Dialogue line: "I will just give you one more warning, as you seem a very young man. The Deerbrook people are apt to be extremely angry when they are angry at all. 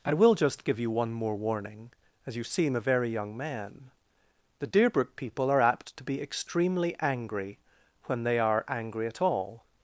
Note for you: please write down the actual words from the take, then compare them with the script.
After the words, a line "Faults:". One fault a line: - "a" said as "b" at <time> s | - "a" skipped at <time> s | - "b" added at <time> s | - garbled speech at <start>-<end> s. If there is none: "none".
"I will just give you one more warning, as you seem a very young man. The Deerbrook people are apt to be extremely angry when they are angry at all.
Faults:
none